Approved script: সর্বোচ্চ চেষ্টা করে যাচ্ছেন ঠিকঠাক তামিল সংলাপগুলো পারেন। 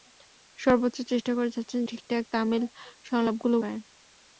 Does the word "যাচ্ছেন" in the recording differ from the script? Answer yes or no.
no